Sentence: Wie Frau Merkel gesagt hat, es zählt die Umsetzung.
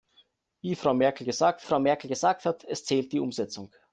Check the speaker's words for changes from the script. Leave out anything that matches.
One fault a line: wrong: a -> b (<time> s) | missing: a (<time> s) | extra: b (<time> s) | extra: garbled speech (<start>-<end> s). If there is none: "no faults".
extra: Frau Merkel gesagt (1.6 s)